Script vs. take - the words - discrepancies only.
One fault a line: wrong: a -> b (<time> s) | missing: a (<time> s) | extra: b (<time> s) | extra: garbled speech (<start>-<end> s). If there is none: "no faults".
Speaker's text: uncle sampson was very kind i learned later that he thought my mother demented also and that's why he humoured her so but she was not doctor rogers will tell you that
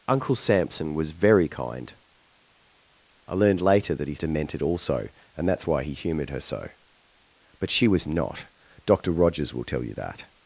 missing: thought my mother (4.2 s)